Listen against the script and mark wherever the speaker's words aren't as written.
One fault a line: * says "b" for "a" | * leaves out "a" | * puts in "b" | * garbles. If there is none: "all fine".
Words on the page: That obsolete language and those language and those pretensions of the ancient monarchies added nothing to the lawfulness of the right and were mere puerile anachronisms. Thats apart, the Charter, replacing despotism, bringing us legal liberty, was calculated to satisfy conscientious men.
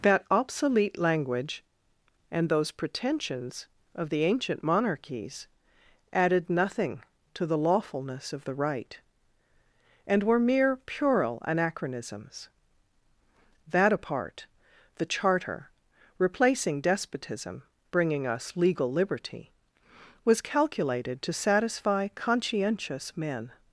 * leaves out "language and those"
* says "That" for "Thats"